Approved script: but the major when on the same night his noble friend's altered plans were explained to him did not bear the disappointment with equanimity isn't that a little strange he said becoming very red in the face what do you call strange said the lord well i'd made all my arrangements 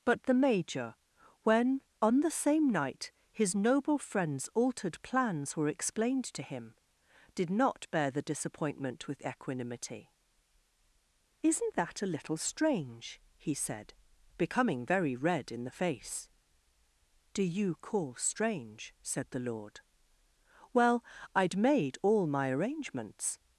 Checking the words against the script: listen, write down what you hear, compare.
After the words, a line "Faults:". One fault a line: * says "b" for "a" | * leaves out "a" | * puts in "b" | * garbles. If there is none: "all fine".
but the major when on the same night his noble friend's altered plans were explained to him did not bear the disappointment with equanimity isn't that a little strange he said becoming very red in the face do you call strange said the lord well i'd made all my arrangements
Faults:
* leaves out "what"